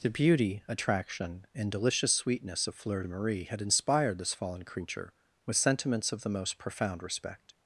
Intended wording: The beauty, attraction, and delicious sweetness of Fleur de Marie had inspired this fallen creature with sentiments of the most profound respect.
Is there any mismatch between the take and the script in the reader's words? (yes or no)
no